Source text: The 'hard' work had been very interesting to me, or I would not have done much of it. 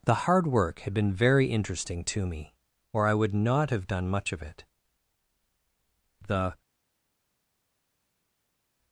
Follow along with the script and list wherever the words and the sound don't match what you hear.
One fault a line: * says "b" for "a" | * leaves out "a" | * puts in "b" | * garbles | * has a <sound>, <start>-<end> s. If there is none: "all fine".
* puts in "The"